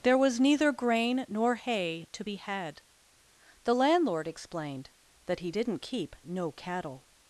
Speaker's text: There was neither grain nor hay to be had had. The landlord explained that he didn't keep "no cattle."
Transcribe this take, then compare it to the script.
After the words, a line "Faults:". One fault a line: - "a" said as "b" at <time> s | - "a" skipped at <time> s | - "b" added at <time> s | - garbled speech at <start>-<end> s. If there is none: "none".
There was neither grain nor hay to be had. The landlord explained that he didn't keep "no cattle."
Faults:
- "had" skipped at 2.8 s